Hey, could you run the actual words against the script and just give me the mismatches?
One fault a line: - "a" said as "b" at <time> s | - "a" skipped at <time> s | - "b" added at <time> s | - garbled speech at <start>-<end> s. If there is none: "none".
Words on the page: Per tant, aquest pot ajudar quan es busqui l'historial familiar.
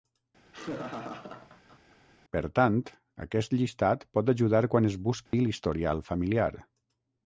- "llistat" added at 3.6 s